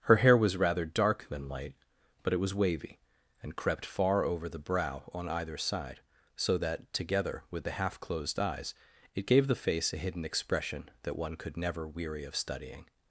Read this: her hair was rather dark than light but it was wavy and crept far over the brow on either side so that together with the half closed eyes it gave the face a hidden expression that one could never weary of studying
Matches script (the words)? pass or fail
pass